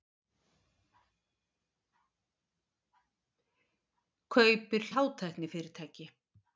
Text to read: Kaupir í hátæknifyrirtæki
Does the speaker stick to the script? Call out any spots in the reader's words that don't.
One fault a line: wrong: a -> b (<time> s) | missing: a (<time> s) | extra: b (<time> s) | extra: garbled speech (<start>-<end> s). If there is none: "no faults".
no faults